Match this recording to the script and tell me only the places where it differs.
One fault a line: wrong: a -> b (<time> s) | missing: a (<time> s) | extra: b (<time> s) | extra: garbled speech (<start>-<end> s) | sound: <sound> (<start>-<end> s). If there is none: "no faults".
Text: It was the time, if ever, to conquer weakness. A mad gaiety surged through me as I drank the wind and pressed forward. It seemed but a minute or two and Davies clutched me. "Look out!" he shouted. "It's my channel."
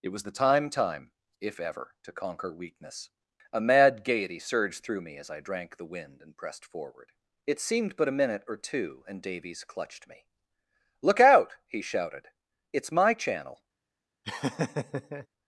extra: time (0.7 s)
sound: laugh (14.2-15.3 s)